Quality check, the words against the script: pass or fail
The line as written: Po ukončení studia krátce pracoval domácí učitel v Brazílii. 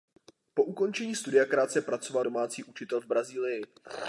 pass